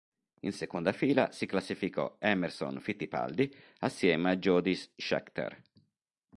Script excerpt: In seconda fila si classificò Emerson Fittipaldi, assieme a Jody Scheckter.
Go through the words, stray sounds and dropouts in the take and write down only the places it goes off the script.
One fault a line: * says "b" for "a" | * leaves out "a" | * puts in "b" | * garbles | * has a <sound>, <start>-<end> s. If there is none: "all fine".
all fine